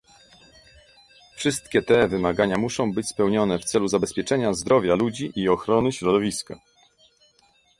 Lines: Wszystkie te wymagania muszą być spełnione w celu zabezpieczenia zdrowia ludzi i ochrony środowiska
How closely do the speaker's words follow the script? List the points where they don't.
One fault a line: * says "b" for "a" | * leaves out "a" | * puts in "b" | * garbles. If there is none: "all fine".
all fine